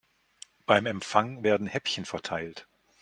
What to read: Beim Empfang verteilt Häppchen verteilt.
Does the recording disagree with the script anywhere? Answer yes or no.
yes